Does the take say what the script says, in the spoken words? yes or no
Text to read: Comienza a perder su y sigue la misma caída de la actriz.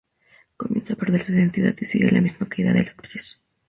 no